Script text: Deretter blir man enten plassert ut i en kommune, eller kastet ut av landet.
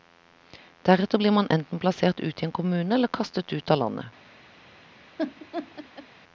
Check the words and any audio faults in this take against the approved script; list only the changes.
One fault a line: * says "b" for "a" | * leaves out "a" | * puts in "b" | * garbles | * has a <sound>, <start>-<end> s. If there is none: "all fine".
* has a laugh, 5.2-6.1 s